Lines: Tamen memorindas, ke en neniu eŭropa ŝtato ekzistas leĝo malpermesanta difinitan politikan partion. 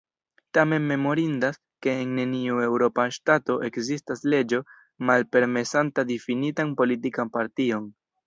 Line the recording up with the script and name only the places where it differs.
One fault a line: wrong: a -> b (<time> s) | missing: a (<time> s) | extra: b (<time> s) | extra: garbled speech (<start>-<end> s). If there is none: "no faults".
no faults